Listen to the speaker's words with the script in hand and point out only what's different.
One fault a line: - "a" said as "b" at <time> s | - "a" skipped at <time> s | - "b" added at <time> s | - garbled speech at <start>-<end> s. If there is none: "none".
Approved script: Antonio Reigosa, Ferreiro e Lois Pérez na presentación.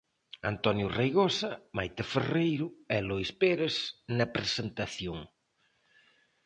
- "Maite" added at 1.8 s